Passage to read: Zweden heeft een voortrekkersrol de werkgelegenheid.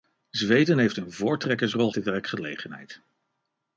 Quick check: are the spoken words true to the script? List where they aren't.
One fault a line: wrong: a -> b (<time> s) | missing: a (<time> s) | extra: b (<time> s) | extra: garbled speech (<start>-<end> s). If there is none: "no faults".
no faults